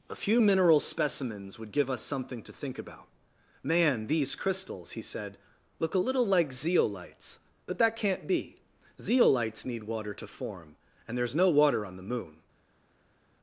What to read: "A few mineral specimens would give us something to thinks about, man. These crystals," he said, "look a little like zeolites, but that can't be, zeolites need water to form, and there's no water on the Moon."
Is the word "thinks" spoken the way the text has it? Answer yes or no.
no